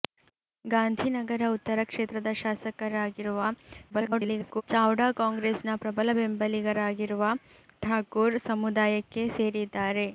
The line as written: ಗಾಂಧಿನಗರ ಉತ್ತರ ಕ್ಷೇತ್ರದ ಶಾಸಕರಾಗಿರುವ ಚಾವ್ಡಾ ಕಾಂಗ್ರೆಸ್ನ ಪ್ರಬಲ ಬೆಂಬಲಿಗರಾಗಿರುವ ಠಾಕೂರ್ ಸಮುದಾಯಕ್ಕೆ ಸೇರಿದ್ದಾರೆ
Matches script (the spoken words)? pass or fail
fail